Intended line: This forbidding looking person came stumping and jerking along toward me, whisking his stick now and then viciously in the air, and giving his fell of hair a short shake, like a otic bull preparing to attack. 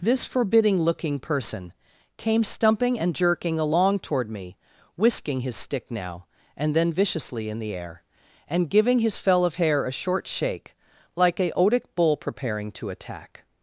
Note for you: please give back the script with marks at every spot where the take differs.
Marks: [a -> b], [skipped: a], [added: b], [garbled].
This forbidding looking person came stumping and jerking along toward me, whisking his stick now and then viciously in the air, and giving his fell of hair a short shake, like a otic bull preparing to attack.